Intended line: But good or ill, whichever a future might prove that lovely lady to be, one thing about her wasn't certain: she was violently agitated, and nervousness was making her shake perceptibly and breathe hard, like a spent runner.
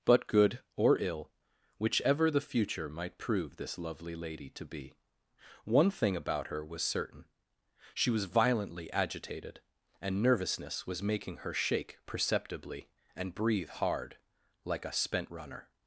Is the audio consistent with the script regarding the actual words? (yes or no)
no